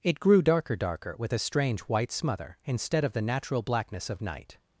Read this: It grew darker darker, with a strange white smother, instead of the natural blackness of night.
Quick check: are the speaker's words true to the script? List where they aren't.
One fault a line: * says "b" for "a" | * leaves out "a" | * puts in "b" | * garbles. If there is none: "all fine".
all fine